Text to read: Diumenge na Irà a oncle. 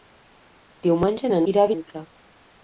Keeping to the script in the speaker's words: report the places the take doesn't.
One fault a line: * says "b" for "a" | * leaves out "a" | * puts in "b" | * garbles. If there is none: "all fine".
all fine